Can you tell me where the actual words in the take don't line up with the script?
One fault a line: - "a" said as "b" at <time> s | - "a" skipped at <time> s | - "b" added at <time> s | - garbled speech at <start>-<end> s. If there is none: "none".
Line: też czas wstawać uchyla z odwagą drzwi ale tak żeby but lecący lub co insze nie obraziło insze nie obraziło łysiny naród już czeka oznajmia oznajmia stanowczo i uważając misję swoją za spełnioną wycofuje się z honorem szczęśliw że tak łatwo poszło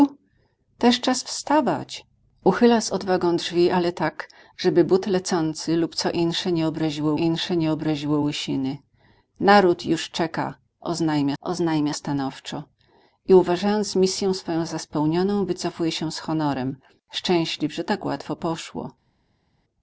none